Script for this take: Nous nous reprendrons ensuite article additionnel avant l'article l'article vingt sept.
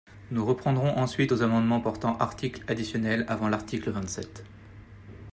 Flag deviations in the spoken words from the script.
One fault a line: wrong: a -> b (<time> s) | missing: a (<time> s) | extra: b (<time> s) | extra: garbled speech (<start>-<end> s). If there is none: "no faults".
missing: nous (0.4 s)
extra: aux amendements portant (1.3 s)
missing: l'article (3.9 s)